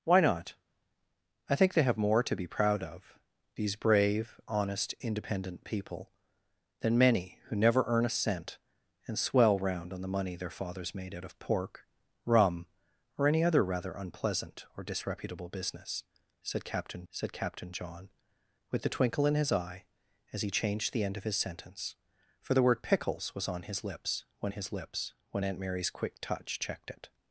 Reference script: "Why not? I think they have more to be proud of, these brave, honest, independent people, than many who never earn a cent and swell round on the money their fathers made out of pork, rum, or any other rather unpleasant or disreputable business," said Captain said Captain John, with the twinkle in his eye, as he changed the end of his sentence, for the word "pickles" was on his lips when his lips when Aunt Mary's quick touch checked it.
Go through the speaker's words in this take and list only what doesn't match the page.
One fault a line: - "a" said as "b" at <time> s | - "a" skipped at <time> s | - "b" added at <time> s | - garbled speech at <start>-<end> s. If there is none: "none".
none